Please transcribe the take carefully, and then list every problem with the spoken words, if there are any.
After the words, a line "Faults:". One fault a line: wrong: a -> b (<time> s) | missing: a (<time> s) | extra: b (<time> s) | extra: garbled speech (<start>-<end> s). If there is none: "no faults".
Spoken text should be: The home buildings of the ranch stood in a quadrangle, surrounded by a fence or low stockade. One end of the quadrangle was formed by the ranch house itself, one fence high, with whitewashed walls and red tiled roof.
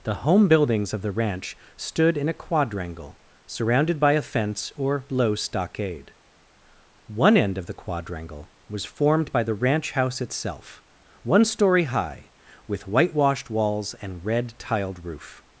The home buildings of the ranch stood in a quadrangle, surrounded by a fence or low stockade. One end of the quadrangle was formed by the ranch house itself, one story high, with whitewashed walls and red tiled roof.
Faults:
wrong: fence -> story (11.4 s)